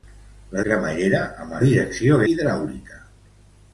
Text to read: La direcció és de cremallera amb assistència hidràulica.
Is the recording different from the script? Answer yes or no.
yes